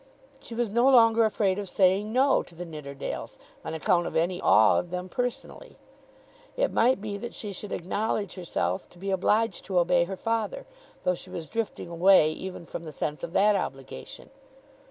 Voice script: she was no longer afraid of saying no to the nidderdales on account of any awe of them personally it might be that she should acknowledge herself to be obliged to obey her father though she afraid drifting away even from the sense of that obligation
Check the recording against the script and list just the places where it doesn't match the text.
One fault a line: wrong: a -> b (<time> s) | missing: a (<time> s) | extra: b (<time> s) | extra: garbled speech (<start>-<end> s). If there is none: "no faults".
wrong: afraid -> was (11.3 s)